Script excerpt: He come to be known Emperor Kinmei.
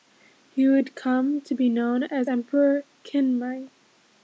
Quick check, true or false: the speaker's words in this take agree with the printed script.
false